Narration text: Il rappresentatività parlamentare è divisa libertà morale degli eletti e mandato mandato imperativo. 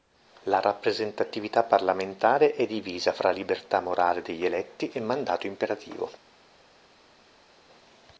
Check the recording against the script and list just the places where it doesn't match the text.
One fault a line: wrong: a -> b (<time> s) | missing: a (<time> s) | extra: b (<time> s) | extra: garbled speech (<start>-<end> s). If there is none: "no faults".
wrong: Il -> La (0.5 s)
extra: fra (3.1 s)
missing: mandato (5.5 s)